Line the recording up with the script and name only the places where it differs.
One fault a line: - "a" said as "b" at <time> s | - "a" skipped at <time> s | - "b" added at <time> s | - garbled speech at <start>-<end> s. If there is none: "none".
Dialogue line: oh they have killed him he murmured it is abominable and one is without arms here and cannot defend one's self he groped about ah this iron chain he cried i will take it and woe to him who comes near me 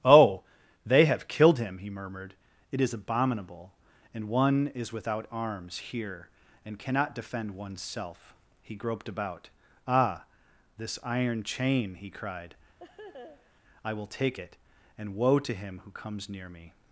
none